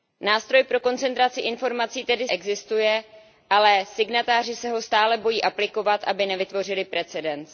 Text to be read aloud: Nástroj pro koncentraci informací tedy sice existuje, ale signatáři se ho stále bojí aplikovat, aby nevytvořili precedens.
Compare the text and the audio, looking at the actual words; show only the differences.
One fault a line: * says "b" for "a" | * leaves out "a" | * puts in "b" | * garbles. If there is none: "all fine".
* leaves out "sice"